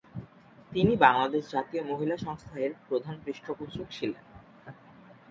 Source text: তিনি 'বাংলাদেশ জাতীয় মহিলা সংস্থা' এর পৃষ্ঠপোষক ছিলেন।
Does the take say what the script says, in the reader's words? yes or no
no